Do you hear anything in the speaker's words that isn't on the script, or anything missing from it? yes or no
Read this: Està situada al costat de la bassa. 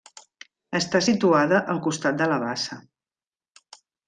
no